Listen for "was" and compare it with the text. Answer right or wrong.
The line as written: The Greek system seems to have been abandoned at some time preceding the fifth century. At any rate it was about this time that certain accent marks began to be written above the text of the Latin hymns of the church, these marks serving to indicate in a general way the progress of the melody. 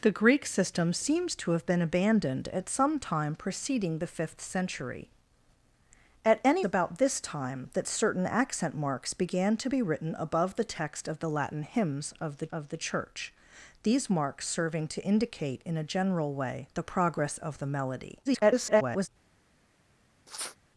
wrong